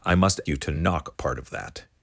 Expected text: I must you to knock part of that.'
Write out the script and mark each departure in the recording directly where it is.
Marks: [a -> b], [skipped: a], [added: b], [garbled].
I must you to knock part of that.'